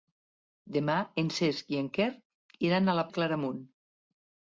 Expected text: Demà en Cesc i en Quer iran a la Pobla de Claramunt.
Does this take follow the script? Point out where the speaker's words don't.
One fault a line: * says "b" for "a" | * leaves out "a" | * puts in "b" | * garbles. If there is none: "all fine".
* leaves out "Pobla"